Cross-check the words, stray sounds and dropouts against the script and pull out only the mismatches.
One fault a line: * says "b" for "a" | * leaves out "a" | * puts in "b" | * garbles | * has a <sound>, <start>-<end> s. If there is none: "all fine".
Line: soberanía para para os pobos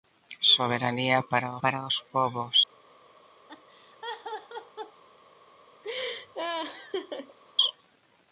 * has a laugh, 3.5-5.0 s
* has a laugh, 5.8-7.4 s